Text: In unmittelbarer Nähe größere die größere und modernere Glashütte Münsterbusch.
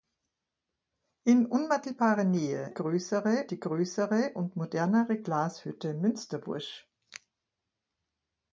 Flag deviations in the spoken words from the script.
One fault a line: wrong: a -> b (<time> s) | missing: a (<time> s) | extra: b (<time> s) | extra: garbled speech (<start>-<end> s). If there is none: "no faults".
no faults